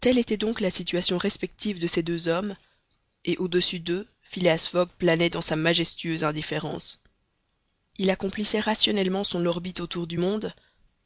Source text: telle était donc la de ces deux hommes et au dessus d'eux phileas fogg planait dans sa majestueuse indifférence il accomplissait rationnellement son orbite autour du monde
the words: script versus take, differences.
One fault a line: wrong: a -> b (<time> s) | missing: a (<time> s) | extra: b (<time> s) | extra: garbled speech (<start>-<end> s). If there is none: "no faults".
extra: situation respective (0.7 s)